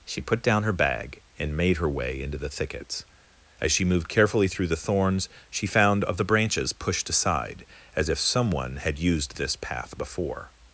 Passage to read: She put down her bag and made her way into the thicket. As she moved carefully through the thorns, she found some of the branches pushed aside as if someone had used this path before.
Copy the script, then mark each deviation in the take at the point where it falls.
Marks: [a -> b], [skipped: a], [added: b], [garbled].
She put down her bag and made her way into the [thicket. -> thickets] As she moved carefully through the thorns, she found [skipped: some] of the branches pushed aside as if someone had used this path before.